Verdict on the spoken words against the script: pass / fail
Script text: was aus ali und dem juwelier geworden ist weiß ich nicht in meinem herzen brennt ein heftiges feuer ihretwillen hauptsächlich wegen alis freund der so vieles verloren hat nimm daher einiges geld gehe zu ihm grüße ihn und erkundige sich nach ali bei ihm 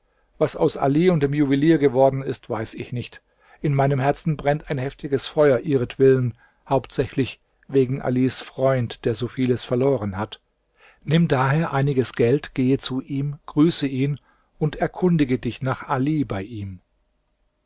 fail